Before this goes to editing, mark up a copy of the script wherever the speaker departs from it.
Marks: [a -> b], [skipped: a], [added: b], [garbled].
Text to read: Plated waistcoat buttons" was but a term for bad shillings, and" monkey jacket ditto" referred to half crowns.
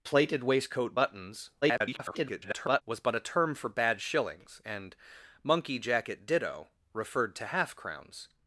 Plated waistcoat buttons" [garbled] was but a term for bad shillings, and" monkey jacket ditto" referred to half crowns.